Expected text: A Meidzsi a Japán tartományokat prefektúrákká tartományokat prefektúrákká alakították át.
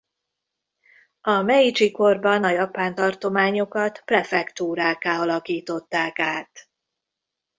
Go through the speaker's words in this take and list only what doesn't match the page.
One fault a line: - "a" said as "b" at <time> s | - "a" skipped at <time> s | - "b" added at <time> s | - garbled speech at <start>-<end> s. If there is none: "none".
- "korban" added at 1.9 s
- "tartományokat prefektúrákká" skipped at 5.2 s